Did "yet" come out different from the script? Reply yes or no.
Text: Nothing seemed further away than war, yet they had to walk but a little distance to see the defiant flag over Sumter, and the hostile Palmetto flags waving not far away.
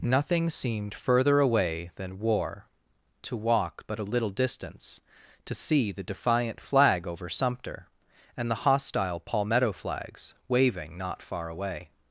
yes